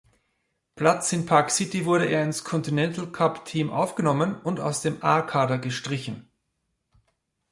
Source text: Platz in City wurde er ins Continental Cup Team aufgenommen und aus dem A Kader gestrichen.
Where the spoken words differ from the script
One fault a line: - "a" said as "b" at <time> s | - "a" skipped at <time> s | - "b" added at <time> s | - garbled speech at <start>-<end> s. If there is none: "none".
- "Park" added at 1.3 s